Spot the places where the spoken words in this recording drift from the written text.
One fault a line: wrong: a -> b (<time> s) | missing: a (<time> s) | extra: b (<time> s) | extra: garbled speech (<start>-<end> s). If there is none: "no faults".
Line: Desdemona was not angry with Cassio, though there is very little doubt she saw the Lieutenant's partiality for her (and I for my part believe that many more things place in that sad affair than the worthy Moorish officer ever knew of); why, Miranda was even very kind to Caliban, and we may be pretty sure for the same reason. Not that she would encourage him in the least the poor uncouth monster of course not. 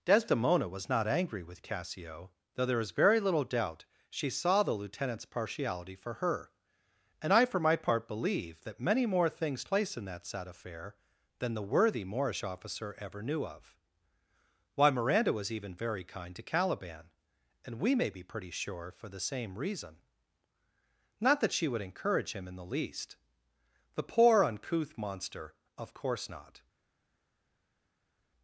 no faults